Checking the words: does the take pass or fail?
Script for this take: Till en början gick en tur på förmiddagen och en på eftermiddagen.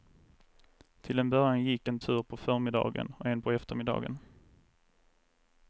pass